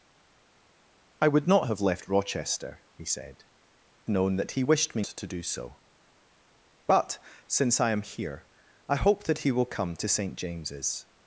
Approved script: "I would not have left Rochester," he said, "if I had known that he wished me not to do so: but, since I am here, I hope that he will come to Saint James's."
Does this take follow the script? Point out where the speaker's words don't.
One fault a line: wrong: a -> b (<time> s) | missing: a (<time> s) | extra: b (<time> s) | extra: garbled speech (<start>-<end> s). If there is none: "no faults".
missing: if I had (3.4 s)
missing: not (5.0 s)